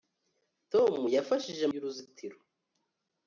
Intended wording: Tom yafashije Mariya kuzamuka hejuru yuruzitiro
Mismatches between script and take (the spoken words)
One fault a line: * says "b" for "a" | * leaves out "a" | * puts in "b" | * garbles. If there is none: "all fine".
* leaves out "Mariya kuzamuka hejuru"